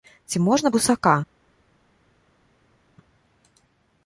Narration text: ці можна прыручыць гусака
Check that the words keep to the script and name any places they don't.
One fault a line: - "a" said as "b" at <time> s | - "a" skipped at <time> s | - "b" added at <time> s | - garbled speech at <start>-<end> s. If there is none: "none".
- "прыручыць" skipped at 0.7 s